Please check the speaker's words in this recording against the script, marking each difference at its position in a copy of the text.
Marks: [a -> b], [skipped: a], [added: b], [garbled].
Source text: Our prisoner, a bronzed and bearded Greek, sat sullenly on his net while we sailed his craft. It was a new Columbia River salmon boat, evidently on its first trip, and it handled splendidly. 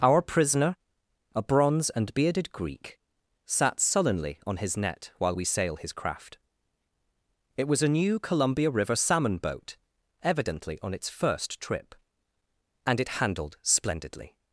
Our prisoner, a [bronzed -> bronze] and bearded Greek, sat sullenly on his net while we [sailed -> sail] his craft. It was a new Columbia River salmon boat, evidently on its first trip, and it handled splendidly.